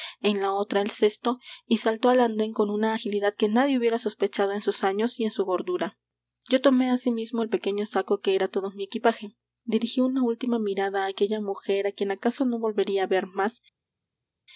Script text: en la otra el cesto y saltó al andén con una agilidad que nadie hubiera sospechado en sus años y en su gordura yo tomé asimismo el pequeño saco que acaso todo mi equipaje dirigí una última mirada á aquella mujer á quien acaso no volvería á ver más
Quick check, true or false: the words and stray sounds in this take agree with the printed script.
false